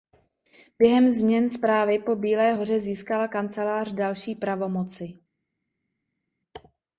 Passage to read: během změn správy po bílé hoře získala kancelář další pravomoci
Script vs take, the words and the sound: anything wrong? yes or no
no